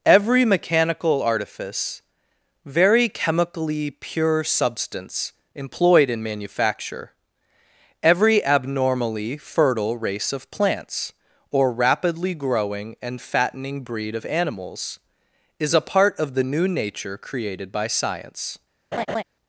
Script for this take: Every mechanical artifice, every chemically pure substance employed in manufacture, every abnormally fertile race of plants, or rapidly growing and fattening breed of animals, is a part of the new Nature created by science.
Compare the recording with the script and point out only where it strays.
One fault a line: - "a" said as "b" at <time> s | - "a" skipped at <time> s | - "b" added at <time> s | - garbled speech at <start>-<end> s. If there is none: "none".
- "every" said as "very" at 2.6 s